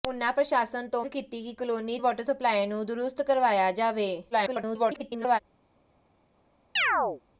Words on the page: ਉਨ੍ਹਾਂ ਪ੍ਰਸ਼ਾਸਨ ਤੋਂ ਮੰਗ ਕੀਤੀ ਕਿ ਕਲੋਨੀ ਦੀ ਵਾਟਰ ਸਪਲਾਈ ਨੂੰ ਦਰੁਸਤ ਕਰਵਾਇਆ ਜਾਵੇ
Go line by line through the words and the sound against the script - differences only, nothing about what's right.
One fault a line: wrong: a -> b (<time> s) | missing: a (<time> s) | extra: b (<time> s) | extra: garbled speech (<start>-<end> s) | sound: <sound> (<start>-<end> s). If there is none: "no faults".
missing: ਮੰਗ (1.0 s)
missing: ਦੀ (2.0 s)
extra: garbled speech (4.3-5.4 s)
sound: chirp (6.8-7.2 s)